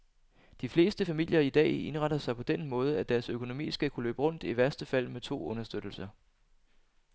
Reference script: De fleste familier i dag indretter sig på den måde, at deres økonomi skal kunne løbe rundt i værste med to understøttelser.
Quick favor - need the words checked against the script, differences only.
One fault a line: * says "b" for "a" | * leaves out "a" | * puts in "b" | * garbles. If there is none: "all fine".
* puts in "fald"